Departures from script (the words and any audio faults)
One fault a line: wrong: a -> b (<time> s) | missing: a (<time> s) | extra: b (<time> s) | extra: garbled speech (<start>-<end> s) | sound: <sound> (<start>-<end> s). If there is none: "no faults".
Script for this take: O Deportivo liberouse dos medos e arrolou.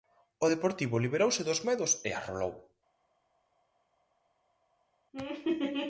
no faults